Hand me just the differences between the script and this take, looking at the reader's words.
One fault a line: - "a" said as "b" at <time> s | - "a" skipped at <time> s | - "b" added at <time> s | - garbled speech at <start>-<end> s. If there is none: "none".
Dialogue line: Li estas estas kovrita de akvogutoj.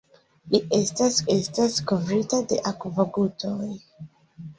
none